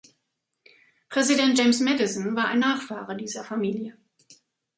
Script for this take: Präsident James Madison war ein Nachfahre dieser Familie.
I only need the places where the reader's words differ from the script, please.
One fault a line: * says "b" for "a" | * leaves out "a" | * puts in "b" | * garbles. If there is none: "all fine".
all fine